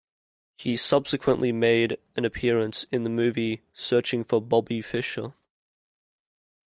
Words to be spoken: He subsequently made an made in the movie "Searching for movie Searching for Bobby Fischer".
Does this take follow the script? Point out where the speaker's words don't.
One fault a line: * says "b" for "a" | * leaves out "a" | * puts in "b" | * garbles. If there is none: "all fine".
* says "appearance" for "made"
* leaves out "movie Searching for"